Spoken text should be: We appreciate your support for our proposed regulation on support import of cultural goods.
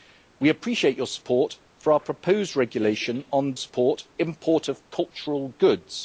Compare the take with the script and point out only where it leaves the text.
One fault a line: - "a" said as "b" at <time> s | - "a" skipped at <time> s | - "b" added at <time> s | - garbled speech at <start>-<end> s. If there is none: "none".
none